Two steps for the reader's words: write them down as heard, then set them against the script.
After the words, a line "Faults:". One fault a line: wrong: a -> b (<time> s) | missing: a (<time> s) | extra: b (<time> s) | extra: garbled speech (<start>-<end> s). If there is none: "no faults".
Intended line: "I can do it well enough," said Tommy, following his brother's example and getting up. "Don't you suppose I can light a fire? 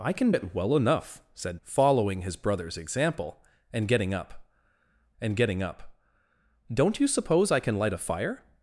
"I can it well enough," said Following his brother's example and getting up and getting up. "Don't you suppose I can light a fire?
Faults:
missing: do (0.3 s)
missing: Tommy (1.6 s)
extra: and getting up (5.2 s)